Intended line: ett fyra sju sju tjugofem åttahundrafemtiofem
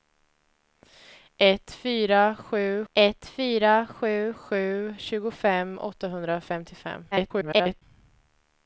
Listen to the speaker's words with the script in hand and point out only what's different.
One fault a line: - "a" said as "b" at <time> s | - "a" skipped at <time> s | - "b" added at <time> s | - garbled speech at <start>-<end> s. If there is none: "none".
- "ett fyra sju" added at 2.9 s
- garbled speech at 7.1-7.8 s